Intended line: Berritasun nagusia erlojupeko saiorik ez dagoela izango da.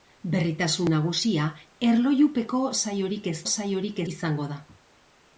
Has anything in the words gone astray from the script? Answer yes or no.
yes